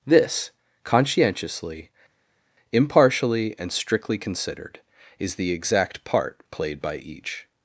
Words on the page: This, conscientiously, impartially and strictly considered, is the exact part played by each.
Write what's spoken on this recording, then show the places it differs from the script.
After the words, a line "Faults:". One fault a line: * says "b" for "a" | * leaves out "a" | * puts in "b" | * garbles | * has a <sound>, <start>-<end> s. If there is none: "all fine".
This, conscientiously, impartially and strictly considered, is the exact part played by each.
Faults:
all fine